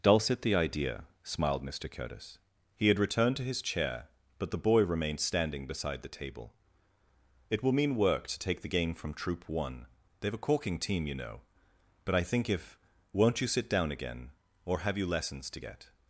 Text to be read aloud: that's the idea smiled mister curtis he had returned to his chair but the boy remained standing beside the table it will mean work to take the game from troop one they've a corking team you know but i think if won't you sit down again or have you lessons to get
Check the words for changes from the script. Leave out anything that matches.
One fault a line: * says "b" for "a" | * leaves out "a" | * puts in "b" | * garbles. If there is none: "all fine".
* says "dulcet" for "that's"